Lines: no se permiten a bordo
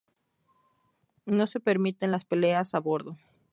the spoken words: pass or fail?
fail